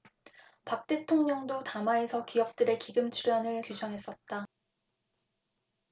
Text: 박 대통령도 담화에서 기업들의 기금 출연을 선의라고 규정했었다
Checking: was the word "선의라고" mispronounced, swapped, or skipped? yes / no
yes